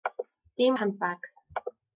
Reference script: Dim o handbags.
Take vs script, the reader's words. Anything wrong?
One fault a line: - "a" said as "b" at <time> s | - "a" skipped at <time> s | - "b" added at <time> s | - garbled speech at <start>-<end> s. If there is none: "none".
none